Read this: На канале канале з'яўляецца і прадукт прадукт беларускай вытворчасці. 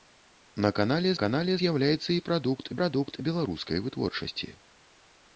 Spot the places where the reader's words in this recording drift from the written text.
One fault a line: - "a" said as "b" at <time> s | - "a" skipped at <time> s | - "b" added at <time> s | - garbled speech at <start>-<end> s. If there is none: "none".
none